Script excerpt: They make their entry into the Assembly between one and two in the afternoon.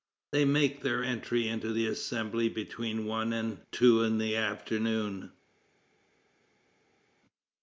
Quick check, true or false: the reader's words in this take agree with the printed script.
true